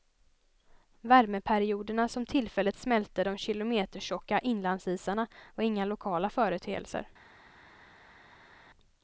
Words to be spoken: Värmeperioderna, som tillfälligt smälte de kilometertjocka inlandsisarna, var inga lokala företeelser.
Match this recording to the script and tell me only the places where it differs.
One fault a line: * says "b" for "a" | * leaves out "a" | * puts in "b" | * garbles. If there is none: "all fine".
all fine